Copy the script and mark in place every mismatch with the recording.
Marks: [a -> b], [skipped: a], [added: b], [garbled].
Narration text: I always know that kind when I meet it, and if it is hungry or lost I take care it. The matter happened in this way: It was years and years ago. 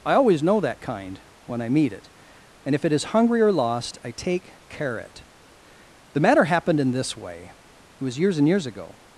I always know that kind when I meet it, and if it is hungry or lost I take care it. The matter happened in this way: It was years and years ago.